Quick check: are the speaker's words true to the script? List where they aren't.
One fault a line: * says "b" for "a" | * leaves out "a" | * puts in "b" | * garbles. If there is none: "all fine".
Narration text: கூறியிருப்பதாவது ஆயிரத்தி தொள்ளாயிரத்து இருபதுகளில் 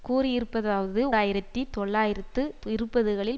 all fine